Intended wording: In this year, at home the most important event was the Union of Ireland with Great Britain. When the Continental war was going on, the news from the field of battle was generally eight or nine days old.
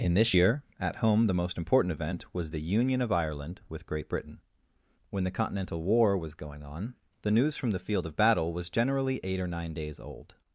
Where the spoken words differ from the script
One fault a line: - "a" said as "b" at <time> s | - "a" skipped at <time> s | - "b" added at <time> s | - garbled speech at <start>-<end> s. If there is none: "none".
none